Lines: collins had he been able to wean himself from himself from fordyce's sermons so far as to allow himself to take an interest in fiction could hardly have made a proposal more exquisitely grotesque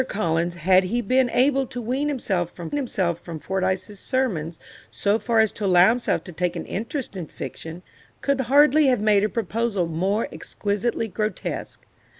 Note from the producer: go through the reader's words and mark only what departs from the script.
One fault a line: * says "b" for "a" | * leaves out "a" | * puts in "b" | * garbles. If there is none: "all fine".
all fine